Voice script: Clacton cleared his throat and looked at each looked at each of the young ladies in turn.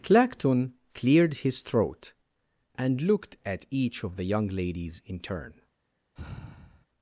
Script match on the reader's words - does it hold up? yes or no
no